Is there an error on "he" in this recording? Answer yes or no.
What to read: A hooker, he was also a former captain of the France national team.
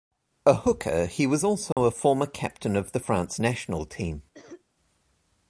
no